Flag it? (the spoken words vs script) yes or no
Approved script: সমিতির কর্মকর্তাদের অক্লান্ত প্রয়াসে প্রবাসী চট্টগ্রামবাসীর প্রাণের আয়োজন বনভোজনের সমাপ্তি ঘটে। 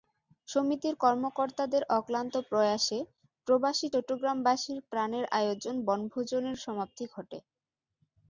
no